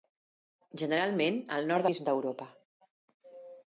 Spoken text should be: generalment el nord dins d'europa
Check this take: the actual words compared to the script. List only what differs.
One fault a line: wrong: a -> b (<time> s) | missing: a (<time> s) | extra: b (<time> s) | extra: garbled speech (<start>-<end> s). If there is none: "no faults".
no faults